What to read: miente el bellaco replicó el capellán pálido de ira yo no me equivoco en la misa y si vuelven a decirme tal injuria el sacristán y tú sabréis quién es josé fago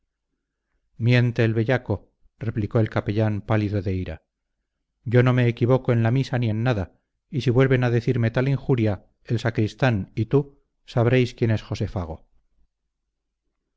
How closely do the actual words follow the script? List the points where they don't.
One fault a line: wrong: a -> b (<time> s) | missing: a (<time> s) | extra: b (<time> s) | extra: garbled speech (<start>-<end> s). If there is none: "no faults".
extra: ni en nada (6.4 s)